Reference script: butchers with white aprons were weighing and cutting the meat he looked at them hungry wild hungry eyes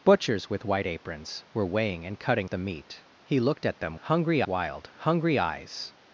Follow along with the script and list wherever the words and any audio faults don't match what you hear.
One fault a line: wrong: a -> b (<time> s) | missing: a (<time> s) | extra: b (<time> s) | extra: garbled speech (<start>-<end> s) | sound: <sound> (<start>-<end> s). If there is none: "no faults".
no faults